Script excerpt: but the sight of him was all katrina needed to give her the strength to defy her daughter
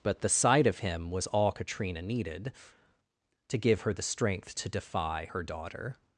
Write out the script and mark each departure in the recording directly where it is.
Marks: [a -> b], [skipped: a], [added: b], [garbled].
but the sight of him was all katrina needed to give her the strength to defy her daughter